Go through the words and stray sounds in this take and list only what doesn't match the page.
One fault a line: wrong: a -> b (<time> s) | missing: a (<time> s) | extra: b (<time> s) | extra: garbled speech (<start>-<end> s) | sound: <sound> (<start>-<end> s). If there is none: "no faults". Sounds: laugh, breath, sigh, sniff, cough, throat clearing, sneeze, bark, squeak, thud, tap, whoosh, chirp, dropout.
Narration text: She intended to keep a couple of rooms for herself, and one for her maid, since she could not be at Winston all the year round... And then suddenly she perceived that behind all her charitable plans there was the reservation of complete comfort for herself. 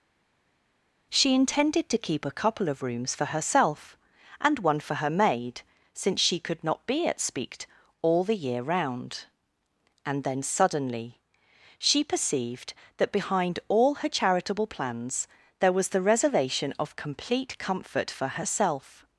wrong: Winston -> Speakt (7.2 s)